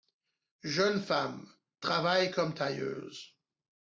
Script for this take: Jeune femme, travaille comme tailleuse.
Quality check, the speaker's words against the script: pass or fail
pass